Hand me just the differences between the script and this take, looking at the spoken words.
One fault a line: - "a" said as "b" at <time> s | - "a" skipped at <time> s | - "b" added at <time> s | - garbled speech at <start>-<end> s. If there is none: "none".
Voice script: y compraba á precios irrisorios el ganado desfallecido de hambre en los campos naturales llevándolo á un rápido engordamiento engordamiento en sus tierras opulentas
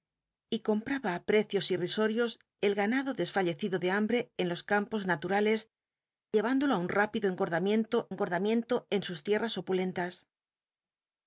none